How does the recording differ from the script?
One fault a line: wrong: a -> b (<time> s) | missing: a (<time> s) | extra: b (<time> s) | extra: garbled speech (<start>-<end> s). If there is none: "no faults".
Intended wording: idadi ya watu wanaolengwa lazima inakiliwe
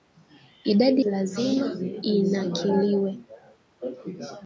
missing: ya watu wanaolengwa (1.1 s)